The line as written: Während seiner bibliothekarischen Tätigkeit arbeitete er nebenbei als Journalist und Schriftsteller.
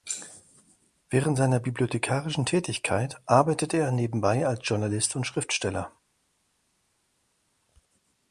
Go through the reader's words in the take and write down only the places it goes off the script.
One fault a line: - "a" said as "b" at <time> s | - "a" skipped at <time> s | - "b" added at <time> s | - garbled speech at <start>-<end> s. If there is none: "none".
none